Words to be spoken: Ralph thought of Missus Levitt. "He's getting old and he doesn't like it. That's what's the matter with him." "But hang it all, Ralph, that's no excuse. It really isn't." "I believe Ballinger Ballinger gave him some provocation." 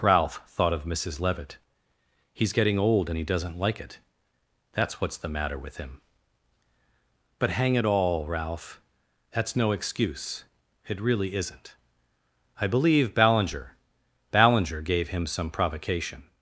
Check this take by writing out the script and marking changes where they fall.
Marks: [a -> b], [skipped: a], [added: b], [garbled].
Ralph thought of Missus Levitt. "He's getting old and he doesn't like it. That's what's the matter with him." "But hang it all, Ralph, that's no excuse. It really isn't." "I believe Ballinger Ballinger gave him some provocation."